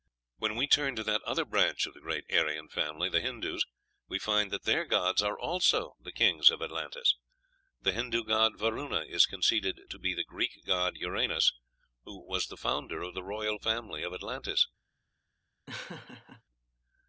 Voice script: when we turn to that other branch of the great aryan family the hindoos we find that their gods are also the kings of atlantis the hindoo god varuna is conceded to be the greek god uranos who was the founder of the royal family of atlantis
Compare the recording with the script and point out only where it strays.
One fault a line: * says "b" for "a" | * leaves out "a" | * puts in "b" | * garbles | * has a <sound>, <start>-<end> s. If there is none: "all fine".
* has a laugh, 15.7-16.4 s